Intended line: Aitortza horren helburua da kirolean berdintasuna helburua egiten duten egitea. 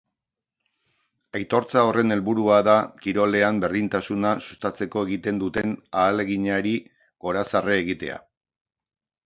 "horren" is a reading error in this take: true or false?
false